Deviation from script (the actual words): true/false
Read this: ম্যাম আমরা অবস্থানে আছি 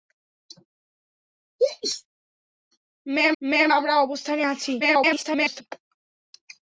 true